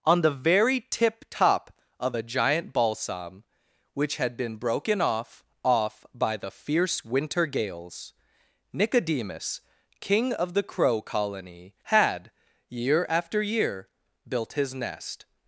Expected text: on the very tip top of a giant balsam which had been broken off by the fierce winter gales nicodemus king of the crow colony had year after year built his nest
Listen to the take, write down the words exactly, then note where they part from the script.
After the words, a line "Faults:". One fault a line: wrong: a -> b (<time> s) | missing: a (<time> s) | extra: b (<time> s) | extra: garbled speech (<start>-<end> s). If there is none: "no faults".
on the very tip top of a giant balsam which had been broken off off by the fierce winter gales nicodemus king of the crow colony had year after year built his nest
Faults:
extra: off (5.6 s)